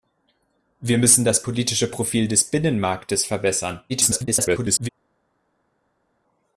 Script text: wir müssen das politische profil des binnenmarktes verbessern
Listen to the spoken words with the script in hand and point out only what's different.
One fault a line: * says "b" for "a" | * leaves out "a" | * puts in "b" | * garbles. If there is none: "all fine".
* garbles